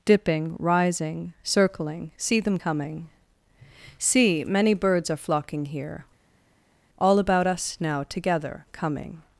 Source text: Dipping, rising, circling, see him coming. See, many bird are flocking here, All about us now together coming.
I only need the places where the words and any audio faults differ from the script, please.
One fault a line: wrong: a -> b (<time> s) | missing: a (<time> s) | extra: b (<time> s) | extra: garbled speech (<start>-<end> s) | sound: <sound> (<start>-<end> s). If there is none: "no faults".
wrong: him -> them (2.4 s)
wrong: bird -> birds (4.7 s)